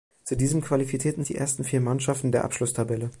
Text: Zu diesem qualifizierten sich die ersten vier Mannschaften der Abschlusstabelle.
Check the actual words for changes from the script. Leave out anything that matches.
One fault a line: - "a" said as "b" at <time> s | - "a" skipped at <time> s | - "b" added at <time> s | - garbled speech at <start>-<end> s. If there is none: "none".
- "sich" skipped at 1.2 s